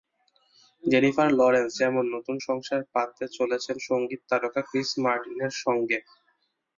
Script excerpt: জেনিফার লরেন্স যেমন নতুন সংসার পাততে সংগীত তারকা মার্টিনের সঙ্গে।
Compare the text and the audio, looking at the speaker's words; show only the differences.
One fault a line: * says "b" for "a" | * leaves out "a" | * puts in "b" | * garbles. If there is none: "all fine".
* puts in "চলেছেন"
* puts in "ক্রিস"